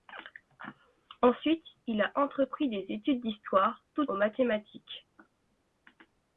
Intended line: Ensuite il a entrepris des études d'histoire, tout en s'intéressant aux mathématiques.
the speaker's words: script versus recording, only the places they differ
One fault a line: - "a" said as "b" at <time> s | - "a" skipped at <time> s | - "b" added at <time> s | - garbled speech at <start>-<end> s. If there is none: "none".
- "en s'intéressant" skipped at 4.1 s